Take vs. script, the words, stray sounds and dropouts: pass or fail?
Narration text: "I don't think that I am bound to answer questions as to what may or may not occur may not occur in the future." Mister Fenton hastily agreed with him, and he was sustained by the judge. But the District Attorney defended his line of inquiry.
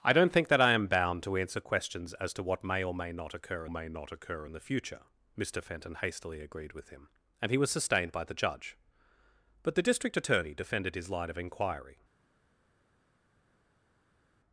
pass